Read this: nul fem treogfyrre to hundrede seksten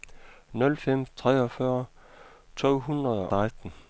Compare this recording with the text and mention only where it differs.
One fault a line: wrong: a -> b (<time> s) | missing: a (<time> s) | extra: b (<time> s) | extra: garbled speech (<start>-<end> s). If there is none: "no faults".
no faults